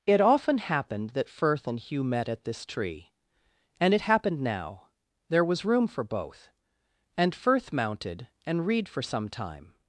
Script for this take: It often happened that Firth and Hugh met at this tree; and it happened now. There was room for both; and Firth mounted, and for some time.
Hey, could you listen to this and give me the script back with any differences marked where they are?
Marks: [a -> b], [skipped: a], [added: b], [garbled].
It often happened that Firth and Hugh met at this tree; and it happened now. There was room for both; and Firth mounted, and [added: read] for some time.